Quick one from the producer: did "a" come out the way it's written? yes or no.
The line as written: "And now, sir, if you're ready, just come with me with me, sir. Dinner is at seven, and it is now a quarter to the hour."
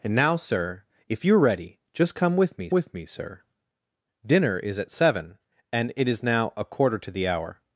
yes